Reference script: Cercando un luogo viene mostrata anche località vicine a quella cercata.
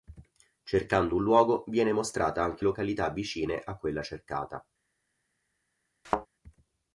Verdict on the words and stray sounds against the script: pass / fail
fail